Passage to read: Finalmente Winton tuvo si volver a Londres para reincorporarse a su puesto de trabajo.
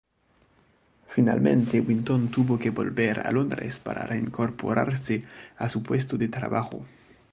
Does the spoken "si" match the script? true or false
false